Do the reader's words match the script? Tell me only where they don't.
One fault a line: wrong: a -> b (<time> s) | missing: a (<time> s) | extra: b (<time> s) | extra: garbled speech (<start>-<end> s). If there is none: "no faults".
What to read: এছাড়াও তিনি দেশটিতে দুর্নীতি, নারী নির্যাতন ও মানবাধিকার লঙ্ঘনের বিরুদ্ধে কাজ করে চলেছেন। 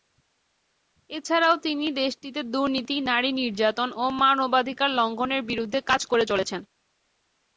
no faults